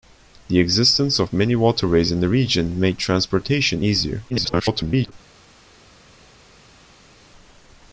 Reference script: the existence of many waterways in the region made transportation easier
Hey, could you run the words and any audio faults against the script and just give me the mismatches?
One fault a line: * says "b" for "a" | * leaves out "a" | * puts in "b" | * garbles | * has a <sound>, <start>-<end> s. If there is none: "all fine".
* garbles